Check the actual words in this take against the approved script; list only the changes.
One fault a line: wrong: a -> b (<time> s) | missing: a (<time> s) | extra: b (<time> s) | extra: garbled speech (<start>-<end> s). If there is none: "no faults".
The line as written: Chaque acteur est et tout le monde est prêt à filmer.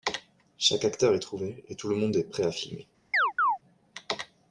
extra: trouvé (1.2 s)